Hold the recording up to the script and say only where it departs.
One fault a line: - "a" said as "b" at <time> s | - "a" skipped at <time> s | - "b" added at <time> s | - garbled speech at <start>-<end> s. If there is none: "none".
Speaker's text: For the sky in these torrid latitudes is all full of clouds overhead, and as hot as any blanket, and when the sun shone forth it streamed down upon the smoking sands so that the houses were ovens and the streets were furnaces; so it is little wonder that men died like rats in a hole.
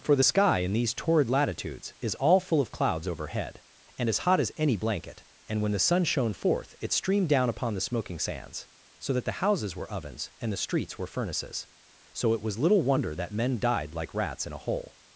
- "is" said as "was" at 12.4 s